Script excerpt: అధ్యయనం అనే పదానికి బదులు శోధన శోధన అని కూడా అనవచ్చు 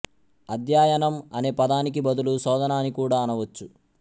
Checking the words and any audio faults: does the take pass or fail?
fail